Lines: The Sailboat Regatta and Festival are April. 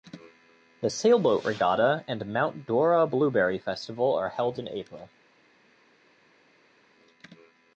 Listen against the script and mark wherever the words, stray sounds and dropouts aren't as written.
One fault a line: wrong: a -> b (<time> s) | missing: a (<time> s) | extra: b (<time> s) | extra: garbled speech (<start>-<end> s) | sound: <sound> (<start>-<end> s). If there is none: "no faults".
extra: Mount Dora Blueberry (2.3 s)
extra: held in (4.3 s)